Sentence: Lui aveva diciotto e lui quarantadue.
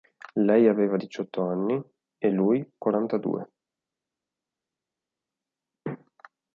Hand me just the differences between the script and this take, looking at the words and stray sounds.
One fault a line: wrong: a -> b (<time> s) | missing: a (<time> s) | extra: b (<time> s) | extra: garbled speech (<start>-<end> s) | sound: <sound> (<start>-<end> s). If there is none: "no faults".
wrong: Lui -> Lei (0.4 s)
extra: anni (1.4 s)